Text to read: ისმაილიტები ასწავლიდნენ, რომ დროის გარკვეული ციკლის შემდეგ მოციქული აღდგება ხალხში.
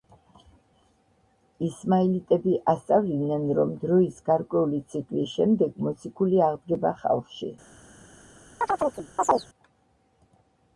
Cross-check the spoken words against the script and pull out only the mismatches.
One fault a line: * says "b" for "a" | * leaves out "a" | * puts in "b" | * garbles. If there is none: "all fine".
all fine